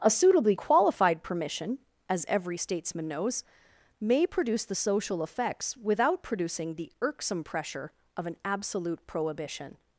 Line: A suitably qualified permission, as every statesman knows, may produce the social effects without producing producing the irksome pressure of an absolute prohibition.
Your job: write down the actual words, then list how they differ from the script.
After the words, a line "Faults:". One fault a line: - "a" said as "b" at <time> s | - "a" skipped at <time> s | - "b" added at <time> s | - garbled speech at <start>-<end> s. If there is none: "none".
A suitably qualified permission, as every statesman knows, may produce the social effects without producing the irksome pressure of an absolute prohibition.
Faults:
- "producing" skipped at 6.7 s